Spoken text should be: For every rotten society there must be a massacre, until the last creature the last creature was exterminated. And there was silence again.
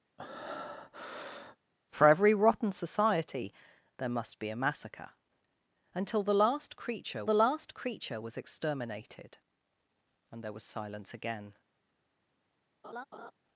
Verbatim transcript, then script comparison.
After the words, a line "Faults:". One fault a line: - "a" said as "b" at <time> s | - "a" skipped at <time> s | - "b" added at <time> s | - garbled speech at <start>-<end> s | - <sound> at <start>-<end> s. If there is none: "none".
For every rotten society there must be a massacre, until the last creature the last creature was exterminated. And there was silence again.
Faults:
- breath at 0.2-1.6 s
- laugh at 12.8-13.3 s